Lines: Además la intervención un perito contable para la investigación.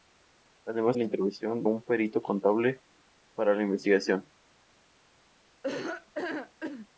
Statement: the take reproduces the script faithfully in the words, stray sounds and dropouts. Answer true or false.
false